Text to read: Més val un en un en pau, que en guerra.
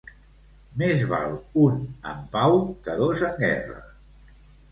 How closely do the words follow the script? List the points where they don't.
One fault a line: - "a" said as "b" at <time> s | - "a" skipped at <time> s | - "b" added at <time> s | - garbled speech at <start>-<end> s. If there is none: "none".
- "un en" skipped at 2.2 s
- "dos" added at 3.0 s